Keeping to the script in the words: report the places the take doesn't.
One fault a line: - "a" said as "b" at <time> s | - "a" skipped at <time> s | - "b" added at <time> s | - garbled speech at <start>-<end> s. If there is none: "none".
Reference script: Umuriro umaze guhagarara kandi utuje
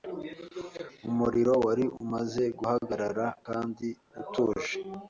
- "wari" added at 1.6 s